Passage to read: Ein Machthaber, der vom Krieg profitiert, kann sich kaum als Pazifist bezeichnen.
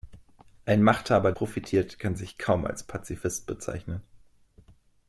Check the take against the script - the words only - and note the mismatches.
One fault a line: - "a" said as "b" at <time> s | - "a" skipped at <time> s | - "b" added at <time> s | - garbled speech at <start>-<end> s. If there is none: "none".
- "der vom Krieg" skipped at 1.3 s